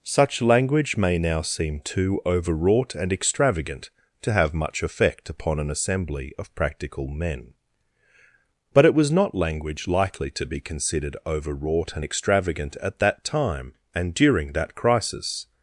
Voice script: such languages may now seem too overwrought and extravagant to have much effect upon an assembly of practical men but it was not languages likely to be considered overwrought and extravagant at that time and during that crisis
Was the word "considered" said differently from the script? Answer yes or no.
no